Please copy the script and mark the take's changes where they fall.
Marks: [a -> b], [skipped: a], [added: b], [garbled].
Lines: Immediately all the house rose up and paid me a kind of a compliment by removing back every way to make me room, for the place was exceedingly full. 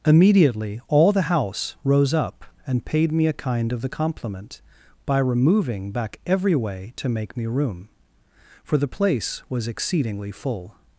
Immediately all the house rose up and paid me a kind of [a -> the] compliment by removing back every way to make me room, for the place was exceedingly full.